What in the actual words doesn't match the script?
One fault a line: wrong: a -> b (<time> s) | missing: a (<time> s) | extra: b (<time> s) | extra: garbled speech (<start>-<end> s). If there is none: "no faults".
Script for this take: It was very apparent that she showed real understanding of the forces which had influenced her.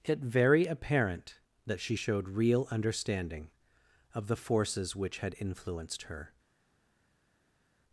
missing: was (0.2 s)